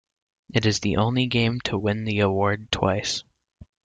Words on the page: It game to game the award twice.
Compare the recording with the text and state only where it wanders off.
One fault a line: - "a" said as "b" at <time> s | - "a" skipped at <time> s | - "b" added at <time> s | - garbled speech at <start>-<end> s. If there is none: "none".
- "is the only" added at 0.7 s
- "game" said as "win" at 1.8 s